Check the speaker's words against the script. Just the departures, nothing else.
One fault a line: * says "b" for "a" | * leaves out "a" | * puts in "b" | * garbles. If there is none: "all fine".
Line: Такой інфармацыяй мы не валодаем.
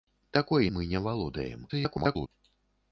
* leaves out "інфармацыяй"
* garbles